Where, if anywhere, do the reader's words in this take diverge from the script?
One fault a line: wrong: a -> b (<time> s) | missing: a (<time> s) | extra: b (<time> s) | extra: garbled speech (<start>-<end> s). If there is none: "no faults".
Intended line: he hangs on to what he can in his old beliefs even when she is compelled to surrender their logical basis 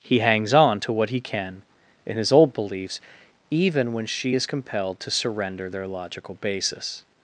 no faults